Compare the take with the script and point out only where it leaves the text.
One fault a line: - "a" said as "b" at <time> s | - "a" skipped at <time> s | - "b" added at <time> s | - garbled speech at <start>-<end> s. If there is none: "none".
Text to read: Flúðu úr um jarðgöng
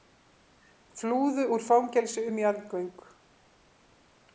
- "fangelsi" added at 1.7 s